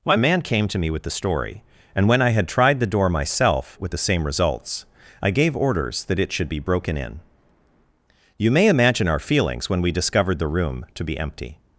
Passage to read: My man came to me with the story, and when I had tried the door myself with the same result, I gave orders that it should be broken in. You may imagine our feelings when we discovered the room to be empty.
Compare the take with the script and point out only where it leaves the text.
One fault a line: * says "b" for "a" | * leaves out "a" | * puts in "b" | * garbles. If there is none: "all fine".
* says "results" for "result"